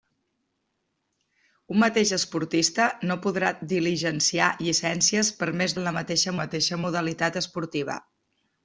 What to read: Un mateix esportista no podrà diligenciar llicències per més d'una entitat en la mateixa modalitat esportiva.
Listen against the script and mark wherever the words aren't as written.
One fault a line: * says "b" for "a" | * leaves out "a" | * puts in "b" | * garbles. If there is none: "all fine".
* leaves out "d'una entitat"
* puts in "mateixa"